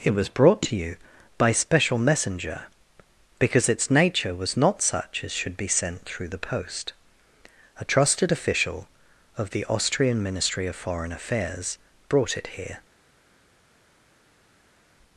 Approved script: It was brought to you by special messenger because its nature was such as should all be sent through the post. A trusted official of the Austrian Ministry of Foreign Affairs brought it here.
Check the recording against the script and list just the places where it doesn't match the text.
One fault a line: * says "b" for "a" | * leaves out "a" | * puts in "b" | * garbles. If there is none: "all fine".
* puts in "not"
* leaves out "all"